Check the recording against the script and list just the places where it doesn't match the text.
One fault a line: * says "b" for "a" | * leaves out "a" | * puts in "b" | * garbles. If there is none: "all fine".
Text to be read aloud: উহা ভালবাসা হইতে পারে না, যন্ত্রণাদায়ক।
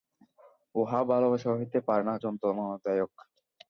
all fine